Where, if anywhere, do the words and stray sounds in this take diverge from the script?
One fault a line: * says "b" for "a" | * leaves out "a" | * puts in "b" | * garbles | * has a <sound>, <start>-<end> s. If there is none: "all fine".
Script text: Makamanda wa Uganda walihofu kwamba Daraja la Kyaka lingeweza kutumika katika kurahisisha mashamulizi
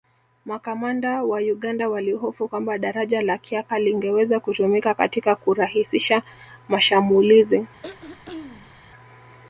* has a throat clearing, 7.8-8.8 s